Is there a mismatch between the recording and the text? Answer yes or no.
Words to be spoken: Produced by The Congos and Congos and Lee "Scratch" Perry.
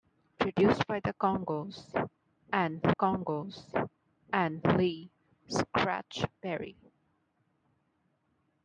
no